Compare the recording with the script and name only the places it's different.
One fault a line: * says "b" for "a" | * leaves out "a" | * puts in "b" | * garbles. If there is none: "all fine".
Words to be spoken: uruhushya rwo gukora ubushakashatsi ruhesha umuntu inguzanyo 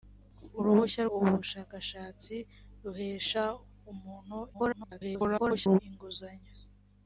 * leaves out "rwo gukora"
* garbles